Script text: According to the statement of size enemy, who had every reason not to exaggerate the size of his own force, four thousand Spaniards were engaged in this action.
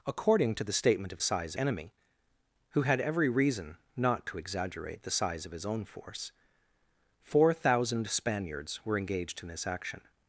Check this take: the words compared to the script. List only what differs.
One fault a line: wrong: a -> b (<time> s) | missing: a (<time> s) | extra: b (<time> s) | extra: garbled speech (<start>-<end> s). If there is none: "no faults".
no faults